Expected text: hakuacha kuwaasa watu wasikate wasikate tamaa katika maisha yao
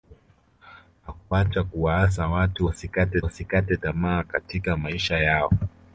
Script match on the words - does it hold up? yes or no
yes